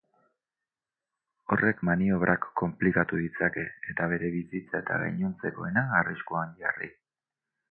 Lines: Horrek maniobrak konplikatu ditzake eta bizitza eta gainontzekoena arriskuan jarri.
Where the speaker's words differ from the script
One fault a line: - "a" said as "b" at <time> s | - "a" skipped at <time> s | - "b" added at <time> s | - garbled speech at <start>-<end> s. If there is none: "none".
- "bere" added at 4.1 s